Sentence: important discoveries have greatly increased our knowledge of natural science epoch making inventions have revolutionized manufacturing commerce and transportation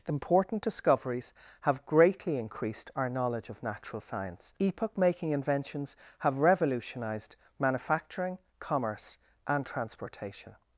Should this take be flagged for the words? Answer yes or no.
no